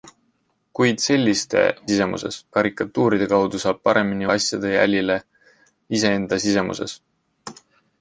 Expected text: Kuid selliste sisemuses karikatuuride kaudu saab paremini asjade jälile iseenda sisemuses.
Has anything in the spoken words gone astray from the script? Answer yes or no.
no